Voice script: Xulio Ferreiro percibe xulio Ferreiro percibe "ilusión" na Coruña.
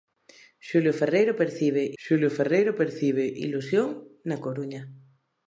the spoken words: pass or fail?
pass